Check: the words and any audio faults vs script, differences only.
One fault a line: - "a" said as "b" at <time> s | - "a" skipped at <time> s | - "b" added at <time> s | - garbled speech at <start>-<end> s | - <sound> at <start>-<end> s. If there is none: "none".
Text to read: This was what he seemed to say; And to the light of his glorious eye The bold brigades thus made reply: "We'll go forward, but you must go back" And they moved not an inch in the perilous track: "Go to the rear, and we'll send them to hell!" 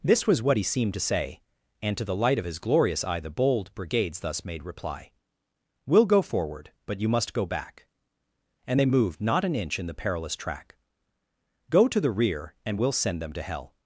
none